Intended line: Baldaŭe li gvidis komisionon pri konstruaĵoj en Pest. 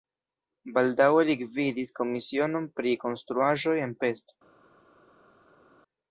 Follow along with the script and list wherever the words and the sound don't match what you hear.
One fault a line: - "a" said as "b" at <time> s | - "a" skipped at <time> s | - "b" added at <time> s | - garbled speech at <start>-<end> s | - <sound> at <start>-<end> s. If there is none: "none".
none